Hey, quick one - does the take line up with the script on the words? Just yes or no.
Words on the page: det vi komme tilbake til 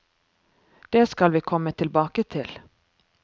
no